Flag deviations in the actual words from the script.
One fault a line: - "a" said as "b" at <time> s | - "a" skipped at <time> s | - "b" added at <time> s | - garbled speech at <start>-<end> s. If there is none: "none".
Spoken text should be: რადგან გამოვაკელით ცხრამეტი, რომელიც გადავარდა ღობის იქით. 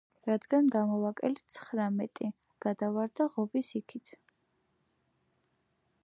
- "რომელიც" skipped at 2.3 s